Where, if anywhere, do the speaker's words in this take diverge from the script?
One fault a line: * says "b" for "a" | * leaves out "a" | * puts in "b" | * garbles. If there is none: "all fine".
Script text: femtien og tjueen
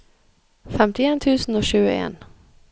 * puts in "tusen"